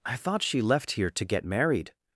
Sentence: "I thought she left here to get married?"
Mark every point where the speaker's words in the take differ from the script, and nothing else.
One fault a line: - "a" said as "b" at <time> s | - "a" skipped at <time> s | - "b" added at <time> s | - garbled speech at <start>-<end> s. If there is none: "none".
none